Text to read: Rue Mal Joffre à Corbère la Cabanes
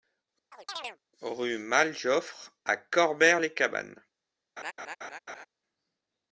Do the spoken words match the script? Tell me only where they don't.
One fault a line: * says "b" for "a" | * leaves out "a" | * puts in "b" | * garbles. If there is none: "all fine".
* says "les" for "la"